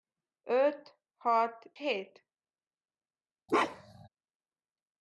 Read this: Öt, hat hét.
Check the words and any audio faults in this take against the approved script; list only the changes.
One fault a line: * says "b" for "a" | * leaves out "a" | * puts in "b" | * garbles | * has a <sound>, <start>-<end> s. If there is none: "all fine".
* has a bark, 3.5-4.1 s